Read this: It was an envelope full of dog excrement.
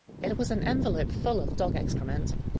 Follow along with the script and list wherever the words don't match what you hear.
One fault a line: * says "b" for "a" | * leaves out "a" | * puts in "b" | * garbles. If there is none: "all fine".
all fine